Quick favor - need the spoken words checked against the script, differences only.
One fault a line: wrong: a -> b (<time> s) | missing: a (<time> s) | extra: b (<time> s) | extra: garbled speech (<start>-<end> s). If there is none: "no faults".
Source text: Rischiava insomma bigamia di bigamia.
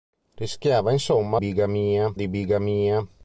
no faults